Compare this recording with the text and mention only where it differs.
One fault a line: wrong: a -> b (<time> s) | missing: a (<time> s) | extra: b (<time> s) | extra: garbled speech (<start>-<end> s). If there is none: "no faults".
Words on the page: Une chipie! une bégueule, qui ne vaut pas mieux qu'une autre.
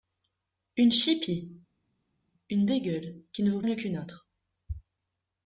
missing: pas (3.6 s)